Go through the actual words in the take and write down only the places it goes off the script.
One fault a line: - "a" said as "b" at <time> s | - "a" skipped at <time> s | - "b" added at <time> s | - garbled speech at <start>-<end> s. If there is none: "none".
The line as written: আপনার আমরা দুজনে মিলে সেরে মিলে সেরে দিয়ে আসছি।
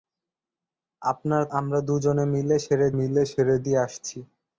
none